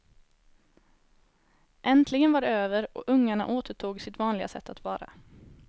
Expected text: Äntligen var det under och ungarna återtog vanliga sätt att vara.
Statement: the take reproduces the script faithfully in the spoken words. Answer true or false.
false